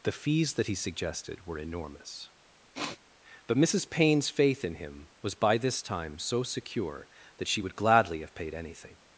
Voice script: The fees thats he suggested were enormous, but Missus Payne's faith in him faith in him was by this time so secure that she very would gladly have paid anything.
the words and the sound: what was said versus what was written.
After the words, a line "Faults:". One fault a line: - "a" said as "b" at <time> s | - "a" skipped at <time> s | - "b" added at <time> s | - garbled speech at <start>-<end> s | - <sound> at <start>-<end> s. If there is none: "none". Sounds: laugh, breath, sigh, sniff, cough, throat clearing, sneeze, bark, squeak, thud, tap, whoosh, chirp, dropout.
The fees that he suggested were enormous, but Missus Payne's faith in him was by this time so secure that she would gladly have paid anything.
Faults:
- "thats" said as "that" at 0.6 s
- sniff at 2.7-3.0 s
- "faith in him" skipped at 5.1 s
- "very" skipped at 7.6 s